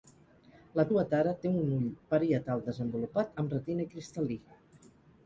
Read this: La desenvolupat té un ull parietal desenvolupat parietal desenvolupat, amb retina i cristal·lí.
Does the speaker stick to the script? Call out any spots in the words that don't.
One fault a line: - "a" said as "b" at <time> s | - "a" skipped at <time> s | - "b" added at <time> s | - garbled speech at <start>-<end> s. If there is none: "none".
- "desenvolupat" said as "tuatara" at 0.9 s
- "parietal desenvolupat" skipped at 3.3 s